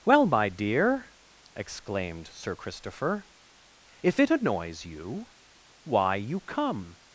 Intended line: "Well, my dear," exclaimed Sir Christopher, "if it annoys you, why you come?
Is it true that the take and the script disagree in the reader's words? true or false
false